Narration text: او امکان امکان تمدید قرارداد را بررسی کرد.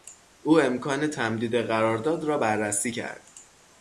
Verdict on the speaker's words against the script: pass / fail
fail